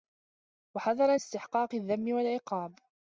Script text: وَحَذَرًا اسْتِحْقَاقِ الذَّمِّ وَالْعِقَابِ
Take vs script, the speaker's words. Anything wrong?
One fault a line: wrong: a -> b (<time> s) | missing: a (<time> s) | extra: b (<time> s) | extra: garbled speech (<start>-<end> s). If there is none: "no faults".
no faults